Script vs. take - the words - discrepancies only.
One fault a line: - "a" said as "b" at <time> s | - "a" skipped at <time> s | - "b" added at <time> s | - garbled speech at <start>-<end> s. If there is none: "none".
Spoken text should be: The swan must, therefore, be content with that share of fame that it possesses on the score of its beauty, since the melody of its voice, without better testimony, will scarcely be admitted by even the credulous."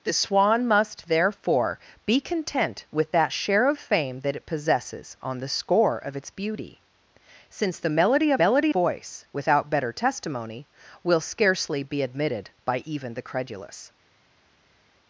- "its" said as "melody" at 8.4 s